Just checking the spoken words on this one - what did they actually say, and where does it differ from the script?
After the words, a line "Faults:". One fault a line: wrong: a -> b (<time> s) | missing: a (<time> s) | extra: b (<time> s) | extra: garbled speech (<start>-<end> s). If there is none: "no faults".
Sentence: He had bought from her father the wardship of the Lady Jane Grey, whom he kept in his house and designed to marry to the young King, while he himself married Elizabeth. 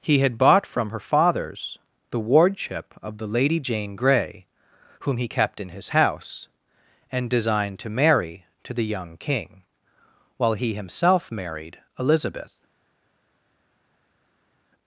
He had bought from her fathers the wardship of the Lady Jane Grey, whom he kept in his house and designed to marry to the young King, while he himself married Elizabeth.
Faults:
wrong: father -> fathers (1.0 s)